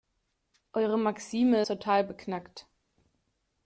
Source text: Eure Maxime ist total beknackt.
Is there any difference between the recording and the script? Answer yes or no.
yes